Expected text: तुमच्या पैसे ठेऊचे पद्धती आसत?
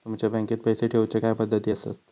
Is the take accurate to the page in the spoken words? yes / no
no